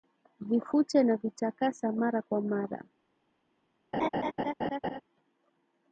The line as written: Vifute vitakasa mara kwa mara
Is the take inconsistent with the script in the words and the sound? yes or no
yes